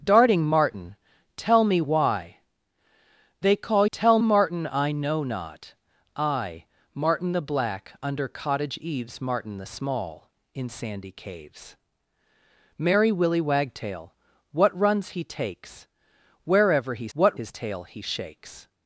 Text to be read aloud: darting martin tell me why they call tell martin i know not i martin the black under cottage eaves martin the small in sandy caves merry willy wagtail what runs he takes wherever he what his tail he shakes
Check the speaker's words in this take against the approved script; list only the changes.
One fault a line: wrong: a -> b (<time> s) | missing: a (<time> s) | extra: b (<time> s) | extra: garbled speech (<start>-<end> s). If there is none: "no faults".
no faults